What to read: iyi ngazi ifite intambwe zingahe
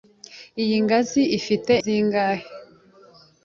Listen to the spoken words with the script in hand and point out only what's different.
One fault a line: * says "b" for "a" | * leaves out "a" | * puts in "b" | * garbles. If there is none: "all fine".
* leaves out "intambwe"